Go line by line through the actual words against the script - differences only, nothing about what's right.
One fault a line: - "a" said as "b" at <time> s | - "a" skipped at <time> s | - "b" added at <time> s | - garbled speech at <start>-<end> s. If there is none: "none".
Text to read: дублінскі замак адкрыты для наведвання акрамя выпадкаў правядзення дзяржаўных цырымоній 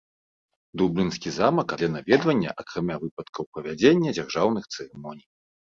- "адкрыты" skipped at 1.7 s